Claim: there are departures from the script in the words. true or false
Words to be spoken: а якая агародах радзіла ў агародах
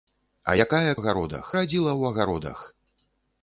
false